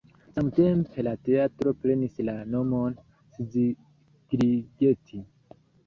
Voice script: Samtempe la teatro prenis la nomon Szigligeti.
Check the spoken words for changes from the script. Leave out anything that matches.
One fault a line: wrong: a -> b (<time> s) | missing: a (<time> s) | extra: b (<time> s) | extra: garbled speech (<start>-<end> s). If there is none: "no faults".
no faults